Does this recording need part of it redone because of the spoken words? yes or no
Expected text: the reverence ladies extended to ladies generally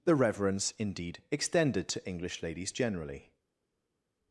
yes